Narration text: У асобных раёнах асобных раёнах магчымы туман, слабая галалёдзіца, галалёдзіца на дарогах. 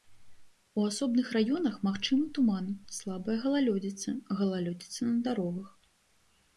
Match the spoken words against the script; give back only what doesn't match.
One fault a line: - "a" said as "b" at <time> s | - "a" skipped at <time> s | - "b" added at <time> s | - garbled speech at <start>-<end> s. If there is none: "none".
- "асобных раёнах" skipped at 1.8 s